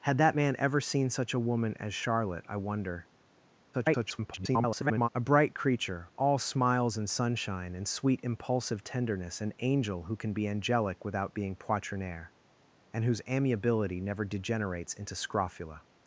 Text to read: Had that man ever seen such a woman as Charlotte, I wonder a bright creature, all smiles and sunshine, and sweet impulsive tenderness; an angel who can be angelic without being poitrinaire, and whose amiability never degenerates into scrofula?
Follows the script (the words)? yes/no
no